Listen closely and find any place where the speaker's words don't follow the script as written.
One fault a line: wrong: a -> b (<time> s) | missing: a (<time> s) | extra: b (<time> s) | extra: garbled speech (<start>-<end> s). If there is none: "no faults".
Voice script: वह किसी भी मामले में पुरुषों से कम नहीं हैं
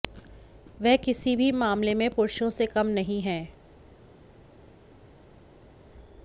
no faults